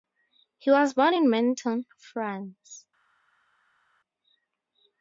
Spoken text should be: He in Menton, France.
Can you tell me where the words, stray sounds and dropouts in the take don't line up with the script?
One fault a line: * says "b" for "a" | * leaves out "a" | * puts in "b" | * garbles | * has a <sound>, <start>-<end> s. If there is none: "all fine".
* puts in "was born"